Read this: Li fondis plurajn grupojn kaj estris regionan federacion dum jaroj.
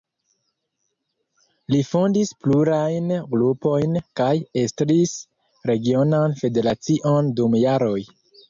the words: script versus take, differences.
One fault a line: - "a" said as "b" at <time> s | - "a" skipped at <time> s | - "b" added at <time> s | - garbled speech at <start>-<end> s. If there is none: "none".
none